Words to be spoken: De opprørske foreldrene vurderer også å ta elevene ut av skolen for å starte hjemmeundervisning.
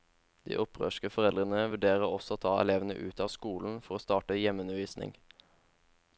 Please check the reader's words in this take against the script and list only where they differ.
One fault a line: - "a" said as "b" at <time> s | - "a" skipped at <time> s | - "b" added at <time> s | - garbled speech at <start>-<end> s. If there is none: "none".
none